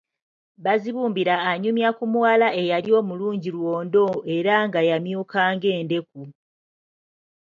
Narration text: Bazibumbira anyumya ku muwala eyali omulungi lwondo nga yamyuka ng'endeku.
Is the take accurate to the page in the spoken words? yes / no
no